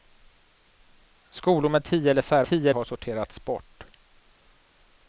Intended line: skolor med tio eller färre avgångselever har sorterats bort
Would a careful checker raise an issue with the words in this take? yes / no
yes